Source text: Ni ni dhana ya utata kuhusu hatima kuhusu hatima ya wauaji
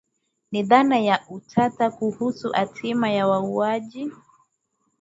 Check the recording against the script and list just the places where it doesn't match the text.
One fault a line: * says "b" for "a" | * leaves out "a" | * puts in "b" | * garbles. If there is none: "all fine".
* leaves out "ni"
* leaves out "kuhusu hatima"